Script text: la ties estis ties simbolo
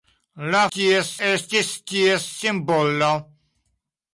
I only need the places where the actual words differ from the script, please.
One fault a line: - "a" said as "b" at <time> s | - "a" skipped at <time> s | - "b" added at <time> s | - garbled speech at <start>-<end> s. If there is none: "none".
none